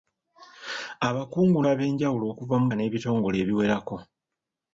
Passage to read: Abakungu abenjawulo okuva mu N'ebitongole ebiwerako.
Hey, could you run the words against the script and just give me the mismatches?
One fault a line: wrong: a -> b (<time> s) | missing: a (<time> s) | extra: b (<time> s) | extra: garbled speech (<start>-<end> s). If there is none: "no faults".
no faults